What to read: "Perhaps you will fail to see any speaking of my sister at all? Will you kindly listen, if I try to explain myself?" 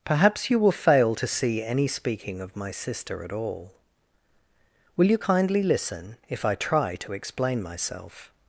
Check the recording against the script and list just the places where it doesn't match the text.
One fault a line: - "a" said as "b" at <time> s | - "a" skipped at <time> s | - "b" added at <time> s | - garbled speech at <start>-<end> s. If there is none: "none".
none